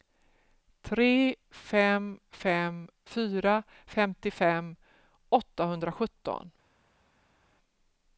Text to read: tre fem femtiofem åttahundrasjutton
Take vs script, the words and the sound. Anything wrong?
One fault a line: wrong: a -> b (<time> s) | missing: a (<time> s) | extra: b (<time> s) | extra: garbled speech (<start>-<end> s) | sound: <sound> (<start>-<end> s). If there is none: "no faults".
extra: fem fyra (2.4 s)